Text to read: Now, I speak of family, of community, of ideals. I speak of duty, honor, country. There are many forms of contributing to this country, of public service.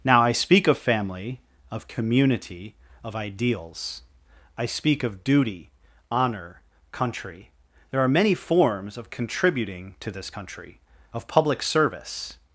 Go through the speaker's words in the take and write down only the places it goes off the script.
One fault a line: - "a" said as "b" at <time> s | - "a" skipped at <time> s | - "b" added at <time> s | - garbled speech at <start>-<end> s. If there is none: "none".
none